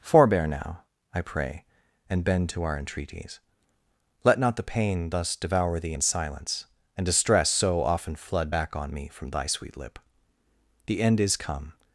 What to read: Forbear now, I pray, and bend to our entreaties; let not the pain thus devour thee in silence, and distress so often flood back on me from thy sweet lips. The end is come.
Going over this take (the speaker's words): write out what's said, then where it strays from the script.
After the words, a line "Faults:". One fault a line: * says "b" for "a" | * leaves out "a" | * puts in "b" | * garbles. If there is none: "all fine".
Forbear now, I pray, and bend to our entreaties; let not the pain thus devour thee in silence, and distress so often flood back on me from thy sweet lip. The end is come.
Faults:
* says "lip" for "lips"